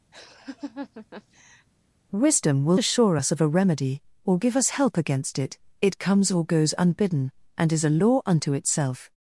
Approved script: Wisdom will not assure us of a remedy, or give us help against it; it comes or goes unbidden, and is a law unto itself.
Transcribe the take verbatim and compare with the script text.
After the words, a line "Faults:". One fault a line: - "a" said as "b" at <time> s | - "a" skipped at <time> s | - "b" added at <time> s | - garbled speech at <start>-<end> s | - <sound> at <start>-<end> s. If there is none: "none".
Wisdom will assure us of a remedy, or give us help against it; it comes or goes unbidden, and is a law unto itself.
Faults:
- laugh at 0.1-1.7 s
- "not" skipped at 2.8 s